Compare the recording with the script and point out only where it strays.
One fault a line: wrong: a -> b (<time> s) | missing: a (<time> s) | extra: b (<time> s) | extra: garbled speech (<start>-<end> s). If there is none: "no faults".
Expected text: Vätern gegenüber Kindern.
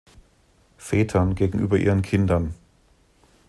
extra: ihren (1.8 s)